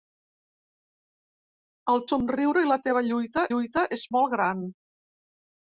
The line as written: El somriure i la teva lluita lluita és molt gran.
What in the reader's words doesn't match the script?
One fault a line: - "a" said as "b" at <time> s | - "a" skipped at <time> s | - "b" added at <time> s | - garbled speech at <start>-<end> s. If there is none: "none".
none